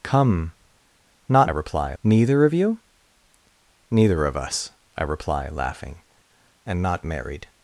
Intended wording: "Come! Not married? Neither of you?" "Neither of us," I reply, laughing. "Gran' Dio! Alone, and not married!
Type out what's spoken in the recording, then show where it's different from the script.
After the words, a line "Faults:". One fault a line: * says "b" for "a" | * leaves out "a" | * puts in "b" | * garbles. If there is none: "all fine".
"Come! Not reply? Neither of you?" "Neither of us," I reply, laughing. "And not married!
Faults:
* says "reply" for "married"
* leaves out "Gran Dio Alone"